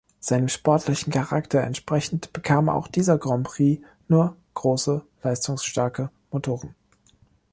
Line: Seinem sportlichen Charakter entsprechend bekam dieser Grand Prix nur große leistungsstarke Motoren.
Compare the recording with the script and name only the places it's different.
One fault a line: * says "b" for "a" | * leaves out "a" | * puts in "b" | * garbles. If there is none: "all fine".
* puts in "auch"